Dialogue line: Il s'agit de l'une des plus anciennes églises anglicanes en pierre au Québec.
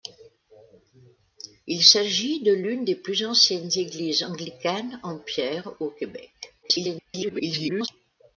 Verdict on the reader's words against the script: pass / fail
fail